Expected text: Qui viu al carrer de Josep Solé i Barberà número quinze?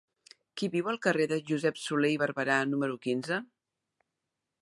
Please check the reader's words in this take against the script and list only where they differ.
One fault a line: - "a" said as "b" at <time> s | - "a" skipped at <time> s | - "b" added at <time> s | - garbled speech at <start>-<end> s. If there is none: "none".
none